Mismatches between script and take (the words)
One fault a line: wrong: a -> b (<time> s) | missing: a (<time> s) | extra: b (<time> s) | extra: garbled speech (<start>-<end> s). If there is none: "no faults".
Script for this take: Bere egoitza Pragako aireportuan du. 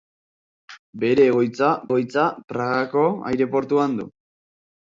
extra: egoitza (1.9 s)